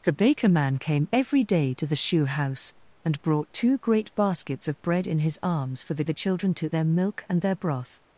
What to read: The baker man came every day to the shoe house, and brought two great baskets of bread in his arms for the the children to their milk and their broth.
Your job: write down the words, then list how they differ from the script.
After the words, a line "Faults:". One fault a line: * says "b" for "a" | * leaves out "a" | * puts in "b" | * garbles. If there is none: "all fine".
The baker man came every day to the shoe house, and brought two great baskets of bread in his arms for the the children to their milk and their broth.
Faults:
all fine